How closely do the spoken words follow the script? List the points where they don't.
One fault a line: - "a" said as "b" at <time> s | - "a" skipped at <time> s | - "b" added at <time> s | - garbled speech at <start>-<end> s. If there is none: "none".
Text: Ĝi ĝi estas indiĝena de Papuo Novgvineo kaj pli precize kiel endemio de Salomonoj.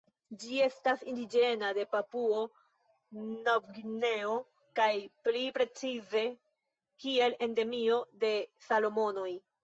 - "ĝi" skipped at 0.6 s